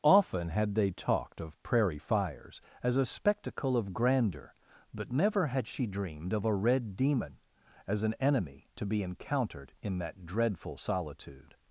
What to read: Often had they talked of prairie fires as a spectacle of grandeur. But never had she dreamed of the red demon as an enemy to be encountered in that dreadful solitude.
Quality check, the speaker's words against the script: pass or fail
fail